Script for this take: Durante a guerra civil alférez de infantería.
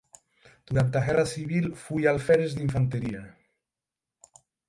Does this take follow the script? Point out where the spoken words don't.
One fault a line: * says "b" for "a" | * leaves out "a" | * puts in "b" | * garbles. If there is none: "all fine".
* puts in "foi"